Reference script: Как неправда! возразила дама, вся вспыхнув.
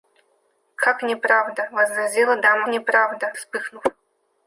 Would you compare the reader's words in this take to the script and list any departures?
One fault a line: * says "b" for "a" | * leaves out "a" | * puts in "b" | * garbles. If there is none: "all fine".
* says "неправда" for "вся"